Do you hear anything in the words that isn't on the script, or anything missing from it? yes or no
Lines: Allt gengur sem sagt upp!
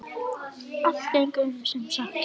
no